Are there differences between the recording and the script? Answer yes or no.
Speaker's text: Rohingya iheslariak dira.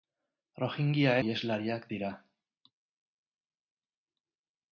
no